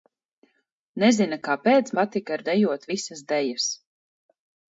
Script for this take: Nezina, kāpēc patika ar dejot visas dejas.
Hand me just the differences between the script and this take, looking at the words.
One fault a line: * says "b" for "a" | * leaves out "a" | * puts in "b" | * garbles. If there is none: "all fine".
all fine